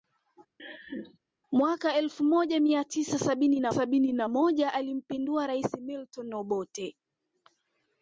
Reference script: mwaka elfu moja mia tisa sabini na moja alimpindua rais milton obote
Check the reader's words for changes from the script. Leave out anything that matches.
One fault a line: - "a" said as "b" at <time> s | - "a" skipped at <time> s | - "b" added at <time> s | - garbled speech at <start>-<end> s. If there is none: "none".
- "sabini na" added at 3.7 s